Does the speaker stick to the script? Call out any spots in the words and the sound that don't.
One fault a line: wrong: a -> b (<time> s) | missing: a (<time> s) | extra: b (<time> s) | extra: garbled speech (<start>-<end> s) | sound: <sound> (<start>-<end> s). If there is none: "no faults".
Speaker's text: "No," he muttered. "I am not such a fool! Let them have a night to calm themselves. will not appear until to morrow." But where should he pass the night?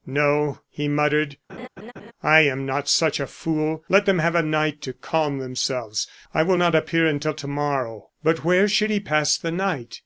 sound: laugh (1.5-2.1 s)
extra: I (6.3 s)